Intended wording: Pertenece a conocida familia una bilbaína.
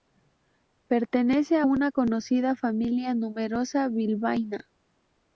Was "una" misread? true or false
true